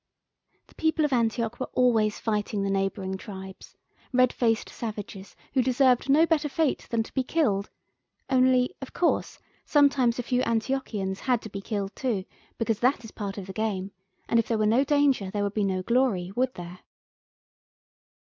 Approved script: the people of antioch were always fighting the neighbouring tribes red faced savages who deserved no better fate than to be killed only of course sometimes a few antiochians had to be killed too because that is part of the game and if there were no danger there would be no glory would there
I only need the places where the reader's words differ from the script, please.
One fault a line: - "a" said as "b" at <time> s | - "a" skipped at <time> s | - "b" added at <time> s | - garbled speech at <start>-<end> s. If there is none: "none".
none